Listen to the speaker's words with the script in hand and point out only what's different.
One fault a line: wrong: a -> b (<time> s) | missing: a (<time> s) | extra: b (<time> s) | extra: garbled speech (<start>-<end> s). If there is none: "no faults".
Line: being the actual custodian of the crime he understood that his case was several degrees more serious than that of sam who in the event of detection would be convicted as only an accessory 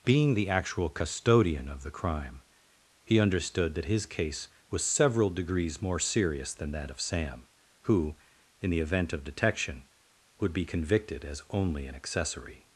no faults